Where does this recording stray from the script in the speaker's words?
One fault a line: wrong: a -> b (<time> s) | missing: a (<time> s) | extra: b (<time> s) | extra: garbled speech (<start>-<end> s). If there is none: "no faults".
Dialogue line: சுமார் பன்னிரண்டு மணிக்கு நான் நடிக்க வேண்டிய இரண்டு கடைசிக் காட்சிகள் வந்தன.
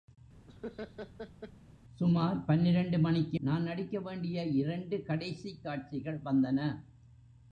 no faults